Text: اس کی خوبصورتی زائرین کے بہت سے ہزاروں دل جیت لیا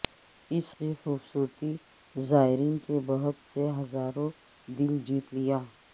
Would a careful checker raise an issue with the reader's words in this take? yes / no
no